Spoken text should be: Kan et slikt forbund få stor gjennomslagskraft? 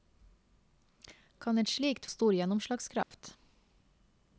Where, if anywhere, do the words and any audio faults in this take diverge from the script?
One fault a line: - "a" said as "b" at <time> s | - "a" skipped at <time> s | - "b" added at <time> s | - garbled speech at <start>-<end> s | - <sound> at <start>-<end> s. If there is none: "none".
- "forbund få" skipped at 2.1 s
- dropout at 3.0-3.1 s